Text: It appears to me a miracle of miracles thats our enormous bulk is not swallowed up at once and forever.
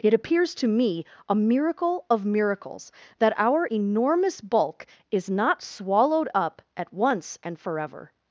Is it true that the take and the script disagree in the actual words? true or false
true